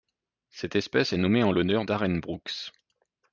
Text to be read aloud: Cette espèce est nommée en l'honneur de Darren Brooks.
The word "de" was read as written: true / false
false